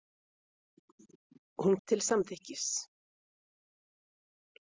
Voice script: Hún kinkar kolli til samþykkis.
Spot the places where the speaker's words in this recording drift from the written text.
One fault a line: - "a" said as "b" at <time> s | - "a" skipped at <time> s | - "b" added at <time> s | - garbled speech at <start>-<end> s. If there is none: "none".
- "kinkar kolli" skipped at 1.8 s